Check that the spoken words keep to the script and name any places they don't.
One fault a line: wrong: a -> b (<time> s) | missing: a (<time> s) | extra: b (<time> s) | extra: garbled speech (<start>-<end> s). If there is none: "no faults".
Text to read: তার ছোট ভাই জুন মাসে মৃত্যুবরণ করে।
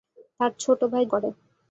missing: জুন মাসে মৃত্যুবরণ (1.0 s)